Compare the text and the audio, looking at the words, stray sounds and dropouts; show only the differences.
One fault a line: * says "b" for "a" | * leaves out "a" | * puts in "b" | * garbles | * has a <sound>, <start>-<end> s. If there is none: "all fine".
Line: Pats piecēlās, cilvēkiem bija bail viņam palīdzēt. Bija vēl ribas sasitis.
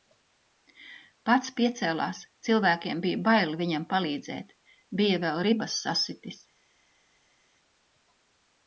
all fine